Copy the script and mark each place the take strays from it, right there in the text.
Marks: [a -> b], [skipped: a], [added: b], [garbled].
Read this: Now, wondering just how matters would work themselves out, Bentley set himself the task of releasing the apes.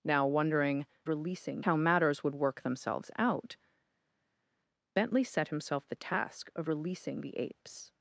Now, wondering [just -> releasing] how matters would work themselves out, Bentley set himself the task of releasing the apes.